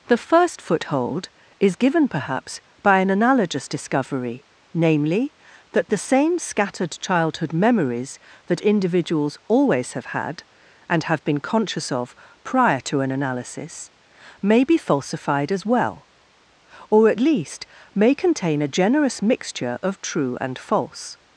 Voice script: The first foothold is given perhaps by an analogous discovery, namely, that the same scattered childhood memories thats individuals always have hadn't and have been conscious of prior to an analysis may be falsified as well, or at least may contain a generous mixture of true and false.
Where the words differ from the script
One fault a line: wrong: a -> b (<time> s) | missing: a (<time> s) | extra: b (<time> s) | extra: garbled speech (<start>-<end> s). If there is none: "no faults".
wrong: thats -> that (8.5 s)
wrong: hadn't -> had (10.1 s)